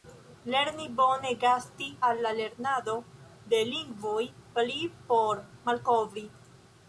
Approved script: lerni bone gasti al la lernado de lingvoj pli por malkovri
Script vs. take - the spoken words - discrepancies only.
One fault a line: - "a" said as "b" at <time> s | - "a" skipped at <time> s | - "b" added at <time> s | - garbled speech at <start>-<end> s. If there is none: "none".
none